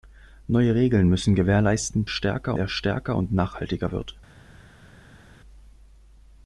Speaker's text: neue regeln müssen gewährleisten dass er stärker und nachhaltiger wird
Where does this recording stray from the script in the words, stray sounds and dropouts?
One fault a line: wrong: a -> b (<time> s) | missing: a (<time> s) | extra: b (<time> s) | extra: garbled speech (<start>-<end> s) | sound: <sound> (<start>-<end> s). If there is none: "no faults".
wrong: dass -> stärker (2.1 s)